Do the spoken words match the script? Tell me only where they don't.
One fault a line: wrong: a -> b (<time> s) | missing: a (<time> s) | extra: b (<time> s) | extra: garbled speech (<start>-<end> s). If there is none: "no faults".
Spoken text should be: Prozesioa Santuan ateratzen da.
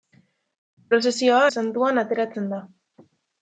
no faults